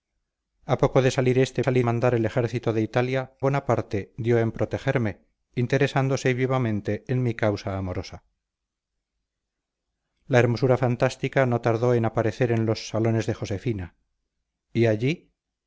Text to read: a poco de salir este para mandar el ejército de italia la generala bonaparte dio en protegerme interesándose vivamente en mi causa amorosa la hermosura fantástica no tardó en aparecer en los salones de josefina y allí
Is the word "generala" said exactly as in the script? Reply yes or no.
no